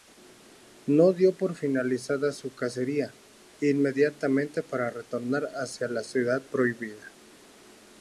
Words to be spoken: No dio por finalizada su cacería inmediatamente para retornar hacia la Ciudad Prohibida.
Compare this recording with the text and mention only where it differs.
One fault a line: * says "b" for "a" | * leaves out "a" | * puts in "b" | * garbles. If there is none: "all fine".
all fine